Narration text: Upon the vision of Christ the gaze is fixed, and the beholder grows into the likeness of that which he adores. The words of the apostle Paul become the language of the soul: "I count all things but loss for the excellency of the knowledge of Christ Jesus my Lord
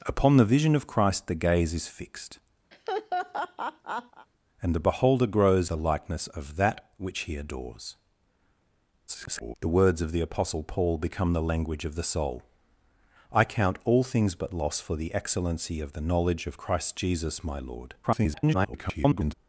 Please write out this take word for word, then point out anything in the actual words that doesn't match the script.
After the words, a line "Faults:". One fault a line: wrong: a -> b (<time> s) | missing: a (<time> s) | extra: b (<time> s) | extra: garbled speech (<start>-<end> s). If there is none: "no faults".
Upon the vision of Christ the gaze is fixed, and the beholder grows the likeness of that which he adores. [garbled] The words of the apostle Paul become the language of the soul: "I count all things but loss for the excellency of the knowledge of Christ Jesus my Lord [garbled]
Faults:
missing: into (5.7 s)
extra: garbled speech (9.1-9.5 s)
extra: garbled speech (18.0-19.3 s)